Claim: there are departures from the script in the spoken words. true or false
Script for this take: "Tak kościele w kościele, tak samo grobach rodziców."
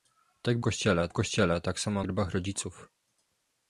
false